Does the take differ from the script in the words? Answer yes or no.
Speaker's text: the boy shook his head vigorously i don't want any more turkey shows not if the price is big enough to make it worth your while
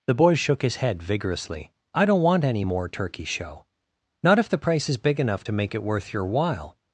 yes